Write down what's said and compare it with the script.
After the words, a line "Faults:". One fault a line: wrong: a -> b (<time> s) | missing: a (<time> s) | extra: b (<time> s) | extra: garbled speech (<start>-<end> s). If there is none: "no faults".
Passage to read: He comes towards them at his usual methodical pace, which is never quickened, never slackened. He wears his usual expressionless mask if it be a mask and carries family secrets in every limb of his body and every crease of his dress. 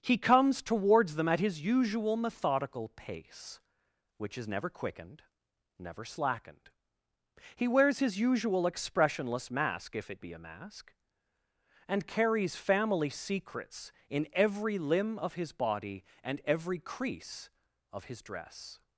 He comes towards them at his usual methodical pace, which is never quickened, never slackened. He wears his usual expressionless mask if it be a mask and carries family secrets in every limb of his body and every crease of his dress.
Faults:
no faults